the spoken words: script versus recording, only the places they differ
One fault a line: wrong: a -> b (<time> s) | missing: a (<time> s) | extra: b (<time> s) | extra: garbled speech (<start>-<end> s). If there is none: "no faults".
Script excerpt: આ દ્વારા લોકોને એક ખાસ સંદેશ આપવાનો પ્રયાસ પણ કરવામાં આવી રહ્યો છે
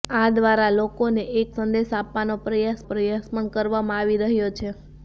missing: ખાસ (1.5 s)
extra: પ્રયાસ (2.9 s)